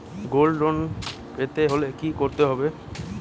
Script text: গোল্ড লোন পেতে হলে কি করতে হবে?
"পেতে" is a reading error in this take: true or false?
false